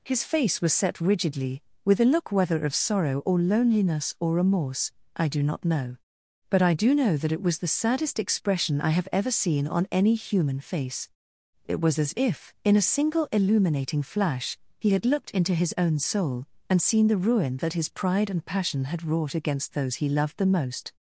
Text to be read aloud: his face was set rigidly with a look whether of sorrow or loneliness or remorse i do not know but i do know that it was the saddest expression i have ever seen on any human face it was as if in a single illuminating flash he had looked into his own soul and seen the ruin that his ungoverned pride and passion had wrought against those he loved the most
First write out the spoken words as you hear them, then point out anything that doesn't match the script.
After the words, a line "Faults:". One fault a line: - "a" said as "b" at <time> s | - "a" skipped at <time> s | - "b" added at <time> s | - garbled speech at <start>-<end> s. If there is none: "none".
his face was set rigidly with a look whether of sorrow or loneliness or remorse i do not know but i do know that it was the saddest expression i have ever seen on any human face it was as if in a single illuminating flash he had looked into his own soul and seen the ruin that his pride and passion had wrought against those he loved the most
Faults:
- "ungoverned" skipped at 17.9 s